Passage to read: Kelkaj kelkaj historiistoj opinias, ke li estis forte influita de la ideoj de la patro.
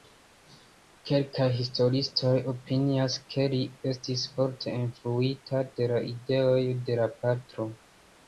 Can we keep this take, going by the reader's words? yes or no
no